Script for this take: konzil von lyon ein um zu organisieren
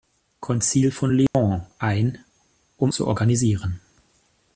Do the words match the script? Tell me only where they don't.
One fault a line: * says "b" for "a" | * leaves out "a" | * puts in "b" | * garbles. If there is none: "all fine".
all fine